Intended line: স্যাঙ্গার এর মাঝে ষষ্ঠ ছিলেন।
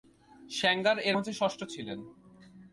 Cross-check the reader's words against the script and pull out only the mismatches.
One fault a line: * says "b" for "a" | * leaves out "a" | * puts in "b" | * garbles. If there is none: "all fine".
all fine